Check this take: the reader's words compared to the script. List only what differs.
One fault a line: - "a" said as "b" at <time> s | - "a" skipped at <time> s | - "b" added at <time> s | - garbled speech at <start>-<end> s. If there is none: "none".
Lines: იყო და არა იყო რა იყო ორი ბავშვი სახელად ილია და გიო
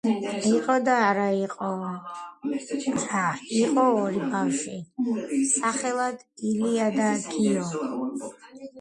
none